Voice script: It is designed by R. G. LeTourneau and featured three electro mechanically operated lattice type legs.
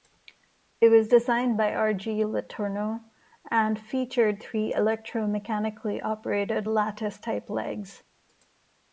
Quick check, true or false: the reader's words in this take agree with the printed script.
false